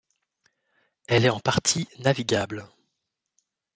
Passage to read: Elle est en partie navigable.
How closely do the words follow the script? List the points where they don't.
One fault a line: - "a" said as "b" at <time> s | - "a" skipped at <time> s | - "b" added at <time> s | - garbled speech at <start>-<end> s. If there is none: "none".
none